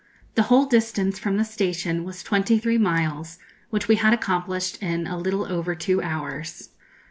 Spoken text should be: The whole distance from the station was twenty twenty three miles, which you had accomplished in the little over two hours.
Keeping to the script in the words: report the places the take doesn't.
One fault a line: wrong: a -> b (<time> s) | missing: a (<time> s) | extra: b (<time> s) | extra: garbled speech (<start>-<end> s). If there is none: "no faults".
missing: twenty (2.6 s)
wrong: you -> we (3.9 s)
wrong: the -> a (5.1 s)